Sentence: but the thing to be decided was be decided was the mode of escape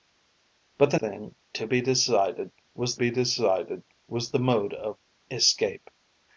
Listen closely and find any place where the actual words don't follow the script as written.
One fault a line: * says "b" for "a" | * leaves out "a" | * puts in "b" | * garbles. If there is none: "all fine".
all fine